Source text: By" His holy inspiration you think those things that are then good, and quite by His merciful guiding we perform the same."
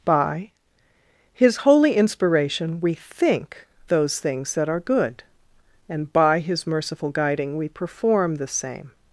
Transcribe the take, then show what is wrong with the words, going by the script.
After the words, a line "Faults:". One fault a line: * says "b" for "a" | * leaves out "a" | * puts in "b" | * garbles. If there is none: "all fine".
By" His holy inspiration we think those things that are good, and by His merciful guiding we perform the same."
Faults:
* says "we" for "you"
* leaves out "then"
* leaves out "quite"